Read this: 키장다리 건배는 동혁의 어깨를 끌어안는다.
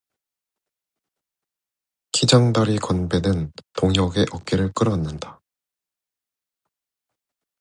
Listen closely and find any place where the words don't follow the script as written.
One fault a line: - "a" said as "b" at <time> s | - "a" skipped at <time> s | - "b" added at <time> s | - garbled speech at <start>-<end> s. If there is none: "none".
none